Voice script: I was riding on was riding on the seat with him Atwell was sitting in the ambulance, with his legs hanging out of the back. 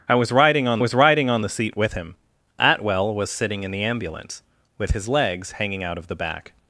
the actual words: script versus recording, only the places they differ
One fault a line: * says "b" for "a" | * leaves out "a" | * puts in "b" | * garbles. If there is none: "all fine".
all fine